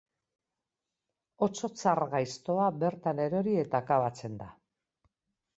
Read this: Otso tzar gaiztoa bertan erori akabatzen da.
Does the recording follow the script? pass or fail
fail